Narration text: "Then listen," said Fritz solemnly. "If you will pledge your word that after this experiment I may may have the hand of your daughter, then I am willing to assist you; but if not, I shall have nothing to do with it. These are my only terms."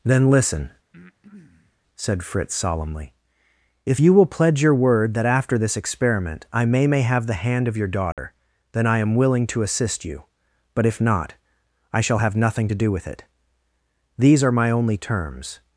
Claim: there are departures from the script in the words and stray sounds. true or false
true